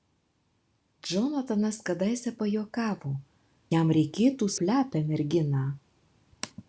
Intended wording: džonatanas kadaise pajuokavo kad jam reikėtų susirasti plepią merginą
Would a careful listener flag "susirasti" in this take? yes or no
yes